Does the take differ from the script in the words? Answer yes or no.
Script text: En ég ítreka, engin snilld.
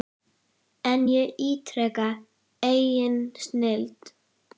no